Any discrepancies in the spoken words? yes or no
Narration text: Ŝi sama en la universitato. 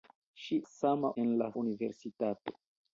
no